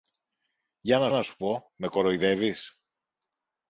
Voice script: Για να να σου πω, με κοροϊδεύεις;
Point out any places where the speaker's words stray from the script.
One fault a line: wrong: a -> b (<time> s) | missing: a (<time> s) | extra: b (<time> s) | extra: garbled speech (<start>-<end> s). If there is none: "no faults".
no faults